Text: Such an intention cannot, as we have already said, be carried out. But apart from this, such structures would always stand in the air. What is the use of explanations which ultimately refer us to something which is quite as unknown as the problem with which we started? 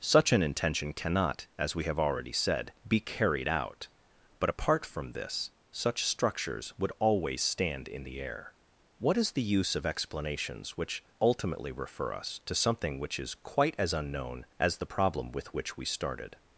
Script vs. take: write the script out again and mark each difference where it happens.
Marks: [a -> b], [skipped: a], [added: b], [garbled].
Such an intention cannot, as we have already said, be carried out. But apart from this, such structures would always stand in the air. What is the use of explanations which ultimately refer us to something which is quite as unknown as the problem with which we started?